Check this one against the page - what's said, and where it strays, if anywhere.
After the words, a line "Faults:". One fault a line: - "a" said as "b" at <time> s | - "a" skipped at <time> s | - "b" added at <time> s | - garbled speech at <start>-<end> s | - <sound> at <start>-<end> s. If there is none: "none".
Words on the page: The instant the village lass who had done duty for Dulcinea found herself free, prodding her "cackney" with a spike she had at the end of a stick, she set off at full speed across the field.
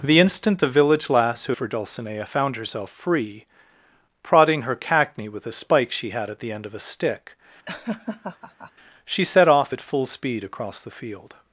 The instant the village lass who for Dulcinea found herself free, prodding her "cackney" with a spike she had at the end of a stick, she set off at full speed across the field.
Faults:
- "had done duty" skipped at 1.5 s
- laugh at 7.7-8.7 s